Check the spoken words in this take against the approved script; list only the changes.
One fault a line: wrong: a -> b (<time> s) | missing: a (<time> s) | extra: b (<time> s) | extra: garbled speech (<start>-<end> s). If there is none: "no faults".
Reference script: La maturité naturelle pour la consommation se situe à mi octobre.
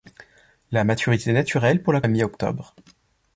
missing: consommation se situe (2.0 s)